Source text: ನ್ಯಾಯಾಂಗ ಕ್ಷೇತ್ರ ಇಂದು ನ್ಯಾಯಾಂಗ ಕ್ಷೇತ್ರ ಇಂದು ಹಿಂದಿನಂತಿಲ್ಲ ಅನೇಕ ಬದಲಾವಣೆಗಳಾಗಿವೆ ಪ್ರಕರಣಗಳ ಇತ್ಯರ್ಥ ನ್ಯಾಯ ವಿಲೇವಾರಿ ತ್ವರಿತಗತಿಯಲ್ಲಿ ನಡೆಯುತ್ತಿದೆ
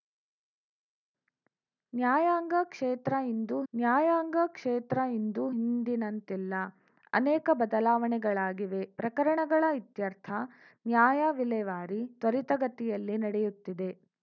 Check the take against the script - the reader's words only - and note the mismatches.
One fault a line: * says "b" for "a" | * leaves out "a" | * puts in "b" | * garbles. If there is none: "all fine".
all fine